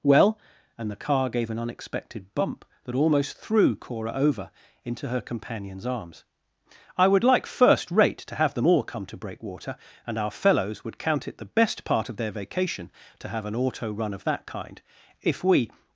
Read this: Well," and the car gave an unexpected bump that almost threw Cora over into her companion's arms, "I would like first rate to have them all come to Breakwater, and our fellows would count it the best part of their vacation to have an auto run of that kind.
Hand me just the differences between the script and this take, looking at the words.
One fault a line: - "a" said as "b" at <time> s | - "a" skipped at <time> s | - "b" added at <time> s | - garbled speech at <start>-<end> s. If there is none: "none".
- "If we" added at 15.2 s